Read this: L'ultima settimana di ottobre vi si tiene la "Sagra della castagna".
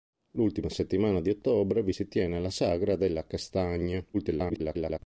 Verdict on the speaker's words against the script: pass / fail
fail